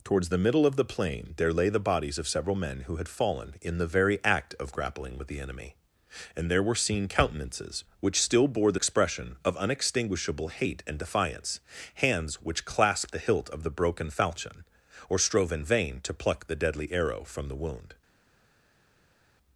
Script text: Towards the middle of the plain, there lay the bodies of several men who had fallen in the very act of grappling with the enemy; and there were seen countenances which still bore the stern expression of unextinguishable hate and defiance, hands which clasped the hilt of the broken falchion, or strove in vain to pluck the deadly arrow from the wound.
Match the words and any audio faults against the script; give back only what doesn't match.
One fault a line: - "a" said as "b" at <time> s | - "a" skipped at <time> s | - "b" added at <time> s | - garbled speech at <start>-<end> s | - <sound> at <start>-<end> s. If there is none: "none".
- "stern" skipped at 8.8 s